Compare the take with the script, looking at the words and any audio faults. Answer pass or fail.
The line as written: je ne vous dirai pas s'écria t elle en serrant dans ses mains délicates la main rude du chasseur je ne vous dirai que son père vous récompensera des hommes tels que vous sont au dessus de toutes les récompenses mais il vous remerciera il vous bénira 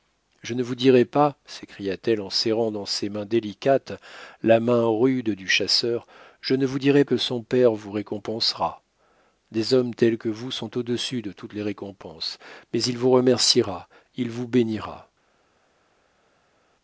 pass